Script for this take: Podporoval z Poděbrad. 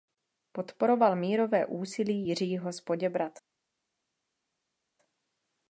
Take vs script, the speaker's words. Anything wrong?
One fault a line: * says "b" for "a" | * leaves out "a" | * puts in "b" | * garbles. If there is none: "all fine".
* puts in "mírové úsilí Jiřího"